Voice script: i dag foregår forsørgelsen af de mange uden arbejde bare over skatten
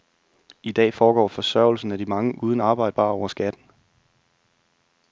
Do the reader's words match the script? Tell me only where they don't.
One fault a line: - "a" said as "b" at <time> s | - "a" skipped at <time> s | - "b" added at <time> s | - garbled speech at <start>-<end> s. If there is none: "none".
none